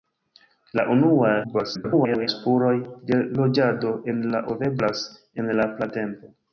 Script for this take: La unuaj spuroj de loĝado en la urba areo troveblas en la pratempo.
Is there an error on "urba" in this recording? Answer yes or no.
yes